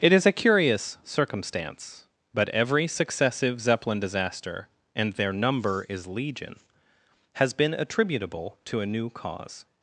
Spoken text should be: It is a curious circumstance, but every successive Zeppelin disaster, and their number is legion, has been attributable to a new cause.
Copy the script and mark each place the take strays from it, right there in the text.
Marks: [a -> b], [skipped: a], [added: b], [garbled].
It is a curious circumstance, but every successive Zeppelin disaster, and their number is legion, has been attributable to a new cause.